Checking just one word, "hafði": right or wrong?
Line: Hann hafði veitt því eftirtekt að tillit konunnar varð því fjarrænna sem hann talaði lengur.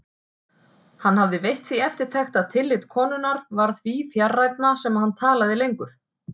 right